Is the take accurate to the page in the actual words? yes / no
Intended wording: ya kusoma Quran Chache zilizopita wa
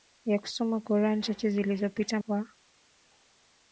yes